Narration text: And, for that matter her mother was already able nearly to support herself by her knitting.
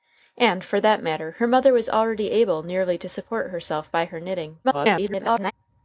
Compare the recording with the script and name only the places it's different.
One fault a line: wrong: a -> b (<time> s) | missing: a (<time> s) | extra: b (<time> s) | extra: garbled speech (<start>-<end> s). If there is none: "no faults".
extra: garbled speech (4.6-5.5 s)